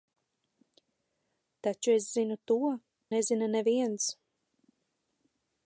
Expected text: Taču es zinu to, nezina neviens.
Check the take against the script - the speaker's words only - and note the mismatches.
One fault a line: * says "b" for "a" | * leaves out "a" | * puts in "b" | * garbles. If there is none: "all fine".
all fine